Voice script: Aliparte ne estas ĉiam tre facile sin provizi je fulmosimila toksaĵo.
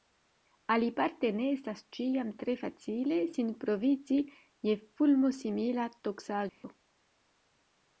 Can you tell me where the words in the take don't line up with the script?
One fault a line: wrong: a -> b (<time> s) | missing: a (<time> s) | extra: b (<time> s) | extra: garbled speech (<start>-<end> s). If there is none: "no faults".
no faults